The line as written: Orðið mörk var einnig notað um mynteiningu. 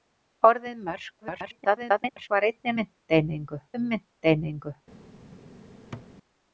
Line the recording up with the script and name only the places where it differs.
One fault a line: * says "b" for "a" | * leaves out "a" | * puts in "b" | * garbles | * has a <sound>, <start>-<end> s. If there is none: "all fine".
* garbles
* says "mynteiningu" for "notað"
* has a thud, 5.9-6.1 s